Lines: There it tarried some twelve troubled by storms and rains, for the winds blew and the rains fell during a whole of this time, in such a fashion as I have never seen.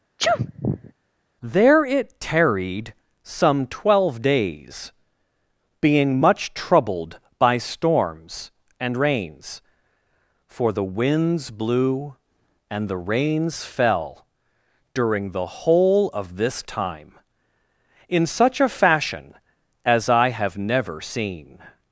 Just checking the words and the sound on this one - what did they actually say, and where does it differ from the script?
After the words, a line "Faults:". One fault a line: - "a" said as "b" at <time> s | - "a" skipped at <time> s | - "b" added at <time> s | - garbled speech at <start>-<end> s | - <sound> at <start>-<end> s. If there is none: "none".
There it tarried some twelve days, being much troubled by storms and rains, for the winds blew and the rains fell during the whole of this time, in such a fashion as I have never seen.
Faults:
- sneeze at 0.2-0.9 s
- "days being much" added at 4.2 s
- "a" said as "the" at 15.3 s